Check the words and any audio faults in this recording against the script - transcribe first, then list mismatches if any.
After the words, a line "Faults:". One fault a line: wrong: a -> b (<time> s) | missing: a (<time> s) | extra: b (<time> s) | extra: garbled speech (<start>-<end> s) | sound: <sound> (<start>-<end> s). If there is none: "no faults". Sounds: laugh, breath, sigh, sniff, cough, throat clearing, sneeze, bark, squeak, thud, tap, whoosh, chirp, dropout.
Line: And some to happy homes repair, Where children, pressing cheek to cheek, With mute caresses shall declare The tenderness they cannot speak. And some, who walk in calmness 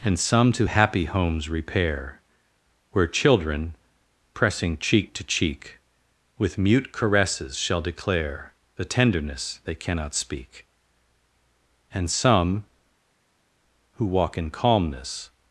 And some to happy homes repair, Where children, pressing cheek to cheek, With mute caresses shall declare The tenderness they cannot speak. And some, who walk in calmness
Faults:
no faults